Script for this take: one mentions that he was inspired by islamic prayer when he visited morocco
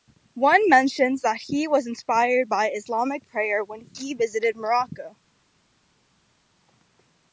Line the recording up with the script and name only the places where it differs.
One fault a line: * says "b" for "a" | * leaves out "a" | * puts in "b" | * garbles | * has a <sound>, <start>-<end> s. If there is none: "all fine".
all fine